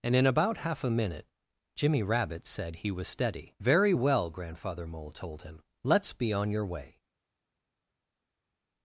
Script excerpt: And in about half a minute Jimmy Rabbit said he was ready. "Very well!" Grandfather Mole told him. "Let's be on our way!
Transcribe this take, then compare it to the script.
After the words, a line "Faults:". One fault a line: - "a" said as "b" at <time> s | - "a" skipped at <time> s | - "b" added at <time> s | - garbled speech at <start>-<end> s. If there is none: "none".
And in about half a minute Jimmy Rabbit said he was steady. "Very well!" Grandfather Mole told him. "Let's be on your way!
Faults:
- "ready" said as "steady" at 3.1 s
- "our" said as "your" at 6.5 s